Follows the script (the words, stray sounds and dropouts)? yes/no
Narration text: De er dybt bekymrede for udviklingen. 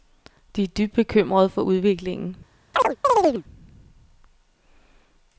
no